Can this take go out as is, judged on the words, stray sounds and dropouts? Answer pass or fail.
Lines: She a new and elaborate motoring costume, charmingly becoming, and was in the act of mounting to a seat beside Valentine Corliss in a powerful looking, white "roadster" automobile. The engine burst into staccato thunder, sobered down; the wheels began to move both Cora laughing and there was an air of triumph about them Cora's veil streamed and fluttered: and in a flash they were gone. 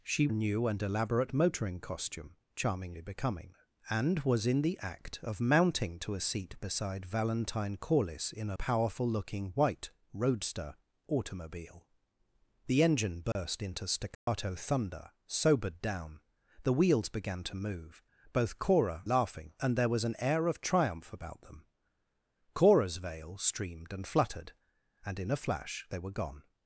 fail